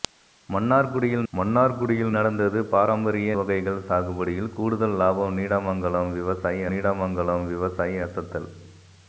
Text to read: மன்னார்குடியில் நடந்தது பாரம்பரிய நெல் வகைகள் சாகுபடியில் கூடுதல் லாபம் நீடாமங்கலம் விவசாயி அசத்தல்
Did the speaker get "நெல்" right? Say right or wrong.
wrong